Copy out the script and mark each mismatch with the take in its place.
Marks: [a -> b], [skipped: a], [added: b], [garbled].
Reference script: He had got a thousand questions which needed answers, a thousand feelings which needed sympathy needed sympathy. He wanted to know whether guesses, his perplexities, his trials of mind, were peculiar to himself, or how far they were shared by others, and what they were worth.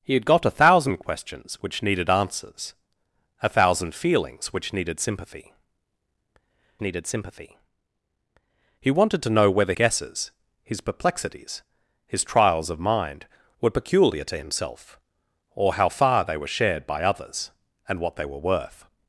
He had got a thousand questions which needed answers, a thousand feelings which needed sympathy needed sympathy. He wanted to know whether guesses, his perplexities, his trials of mind, were peculiar to himself, or how far they were shared by others, and what they were worth.